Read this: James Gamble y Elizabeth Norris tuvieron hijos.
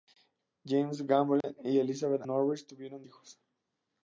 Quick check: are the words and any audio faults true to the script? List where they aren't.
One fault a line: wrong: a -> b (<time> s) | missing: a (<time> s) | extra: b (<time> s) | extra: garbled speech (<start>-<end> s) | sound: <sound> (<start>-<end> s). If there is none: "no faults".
sound: dropout (1.4-1.4 s)